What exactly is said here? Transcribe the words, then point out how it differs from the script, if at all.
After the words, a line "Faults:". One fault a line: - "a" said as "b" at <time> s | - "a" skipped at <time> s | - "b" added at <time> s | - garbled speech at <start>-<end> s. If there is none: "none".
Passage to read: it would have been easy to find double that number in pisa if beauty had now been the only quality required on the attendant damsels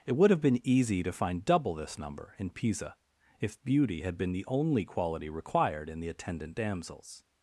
it would have been easy to find double this number in pisa if beauty had been the only quality required in the attendant damsels
Faults:
- "that" said as "this" at 1.8 s
- "now" skipped at 4.2 s
- "on" said as "in" at 5.9 s